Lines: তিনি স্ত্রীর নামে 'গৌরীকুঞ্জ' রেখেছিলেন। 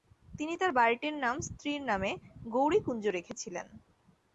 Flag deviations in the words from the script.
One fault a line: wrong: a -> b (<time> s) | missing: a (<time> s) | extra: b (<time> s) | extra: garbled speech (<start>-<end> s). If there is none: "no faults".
extra: তার বাড়িটির নাম (0.6 s)